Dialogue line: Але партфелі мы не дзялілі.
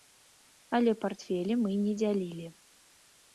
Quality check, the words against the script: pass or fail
pass